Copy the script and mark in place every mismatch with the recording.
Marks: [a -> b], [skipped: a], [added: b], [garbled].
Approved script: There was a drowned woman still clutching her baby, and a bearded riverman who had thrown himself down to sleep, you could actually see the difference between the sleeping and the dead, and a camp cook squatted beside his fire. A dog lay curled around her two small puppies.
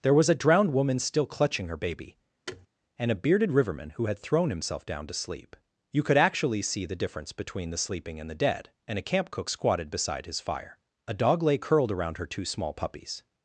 There was a drowned woman still clutching her baby, and a bearded riverman who had thrown himself down to sleep, you could actually see the difference between the sleeping and the dead, and a camp cook squatted beside his fire. A dog lay curled around her two small puppies.